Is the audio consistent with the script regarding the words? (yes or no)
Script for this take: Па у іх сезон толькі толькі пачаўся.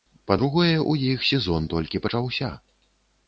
no